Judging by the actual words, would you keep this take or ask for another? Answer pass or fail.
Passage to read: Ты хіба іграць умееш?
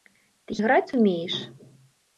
fail